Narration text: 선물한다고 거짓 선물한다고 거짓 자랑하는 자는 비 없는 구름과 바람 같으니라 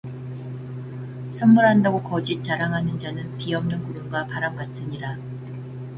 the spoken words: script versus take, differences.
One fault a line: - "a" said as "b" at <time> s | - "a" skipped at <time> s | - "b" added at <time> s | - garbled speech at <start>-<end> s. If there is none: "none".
- "선물한다고 거짓" skipped at 2.4 s